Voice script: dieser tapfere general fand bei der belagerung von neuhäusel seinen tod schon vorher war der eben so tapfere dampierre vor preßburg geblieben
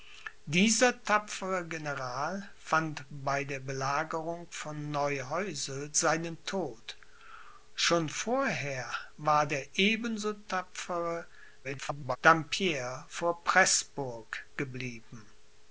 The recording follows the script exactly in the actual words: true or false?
false